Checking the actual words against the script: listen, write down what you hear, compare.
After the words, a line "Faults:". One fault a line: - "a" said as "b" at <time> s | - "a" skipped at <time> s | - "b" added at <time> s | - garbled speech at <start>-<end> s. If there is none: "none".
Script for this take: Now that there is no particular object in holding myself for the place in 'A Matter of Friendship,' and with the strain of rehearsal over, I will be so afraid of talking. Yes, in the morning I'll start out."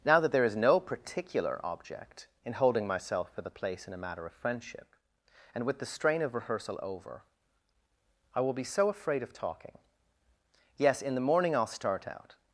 Now that there is no particular object in holding myself for the place in 'A Matter of Friendship,' and with the strain of rehearsal over, I will be so afraid of talking. Yes, in the morning I'll start out."
Faults:
none